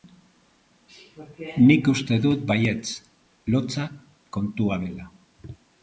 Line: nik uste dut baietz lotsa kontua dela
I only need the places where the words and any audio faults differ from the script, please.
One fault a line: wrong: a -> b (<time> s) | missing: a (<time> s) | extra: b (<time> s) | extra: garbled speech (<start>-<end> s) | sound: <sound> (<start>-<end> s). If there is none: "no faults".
no faults